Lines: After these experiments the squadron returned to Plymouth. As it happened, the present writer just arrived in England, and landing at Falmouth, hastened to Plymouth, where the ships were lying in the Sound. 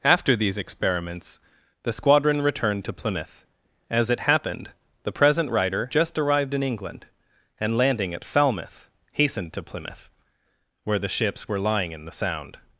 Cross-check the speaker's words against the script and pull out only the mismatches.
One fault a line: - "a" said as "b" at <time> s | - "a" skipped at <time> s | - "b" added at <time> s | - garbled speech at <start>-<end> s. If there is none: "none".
none